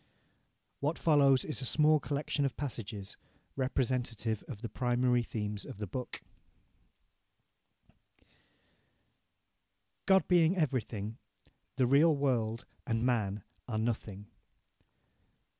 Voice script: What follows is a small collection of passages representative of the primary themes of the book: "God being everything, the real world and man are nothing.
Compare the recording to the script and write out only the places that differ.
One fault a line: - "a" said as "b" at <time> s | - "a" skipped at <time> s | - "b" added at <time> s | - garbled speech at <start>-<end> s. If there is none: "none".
none